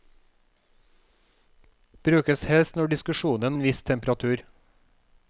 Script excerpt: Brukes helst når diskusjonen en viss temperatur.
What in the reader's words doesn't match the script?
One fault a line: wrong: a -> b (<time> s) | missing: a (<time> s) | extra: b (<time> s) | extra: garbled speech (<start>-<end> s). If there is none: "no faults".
no faults